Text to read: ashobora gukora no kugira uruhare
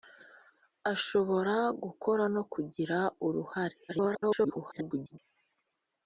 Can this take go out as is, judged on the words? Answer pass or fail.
fail